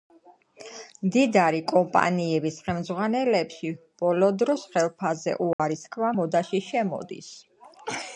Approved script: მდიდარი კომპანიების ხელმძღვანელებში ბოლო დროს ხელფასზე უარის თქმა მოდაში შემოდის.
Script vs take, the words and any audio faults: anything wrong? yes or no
yes